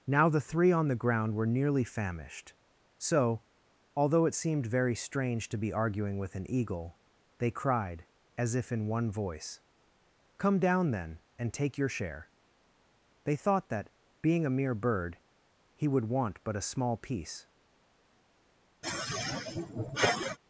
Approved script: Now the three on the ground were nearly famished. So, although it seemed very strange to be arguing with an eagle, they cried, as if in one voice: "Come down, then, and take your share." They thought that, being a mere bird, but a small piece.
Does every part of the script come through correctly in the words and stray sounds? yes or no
no